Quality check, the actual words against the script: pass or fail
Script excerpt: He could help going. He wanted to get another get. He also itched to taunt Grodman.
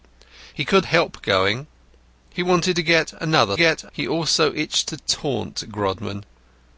pass